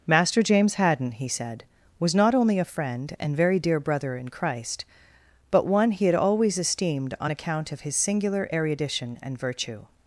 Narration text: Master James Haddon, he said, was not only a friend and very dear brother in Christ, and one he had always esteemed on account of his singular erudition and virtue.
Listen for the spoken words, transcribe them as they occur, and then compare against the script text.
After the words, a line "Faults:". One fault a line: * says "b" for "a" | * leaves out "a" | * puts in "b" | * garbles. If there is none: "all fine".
Master James Haddon, he said, was not only a friend and very dear brother in Christ, but one he had always esteemed on account of his singular erudition and virtue.
Faults:
* says "but" for "and"